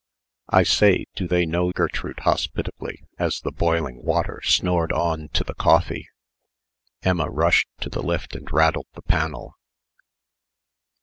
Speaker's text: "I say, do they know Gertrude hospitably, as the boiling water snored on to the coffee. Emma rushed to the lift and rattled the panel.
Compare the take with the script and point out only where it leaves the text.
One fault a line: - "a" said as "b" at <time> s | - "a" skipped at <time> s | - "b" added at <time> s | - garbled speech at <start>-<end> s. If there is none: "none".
none